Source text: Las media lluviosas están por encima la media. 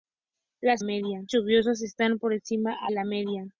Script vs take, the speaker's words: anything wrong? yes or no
no